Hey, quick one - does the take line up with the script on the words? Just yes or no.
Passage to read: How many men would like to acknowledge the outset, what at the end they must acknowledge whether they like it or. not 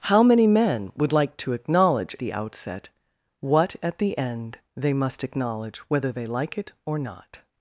yes